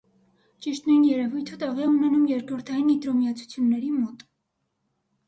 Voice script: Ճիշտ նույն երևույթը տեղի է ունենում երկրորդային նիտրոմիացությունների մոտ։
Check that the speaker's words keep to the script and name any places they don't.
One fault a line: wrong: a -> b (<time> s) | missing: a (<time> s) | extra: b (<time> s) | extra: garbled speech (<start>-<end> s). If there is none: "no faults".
no faults